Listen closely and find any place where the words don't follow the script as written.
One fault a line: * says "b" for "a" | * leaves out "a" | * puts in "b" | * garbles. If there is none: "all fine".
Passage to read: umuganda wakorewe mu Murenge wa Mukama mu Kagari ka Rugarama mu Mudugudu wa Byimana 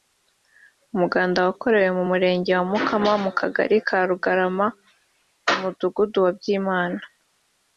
all fine